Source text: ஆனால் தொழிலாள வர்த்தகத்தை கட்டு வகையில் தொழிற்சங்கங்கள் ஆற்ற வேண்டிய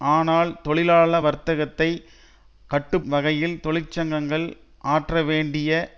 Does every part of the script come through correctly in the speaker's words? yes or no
yes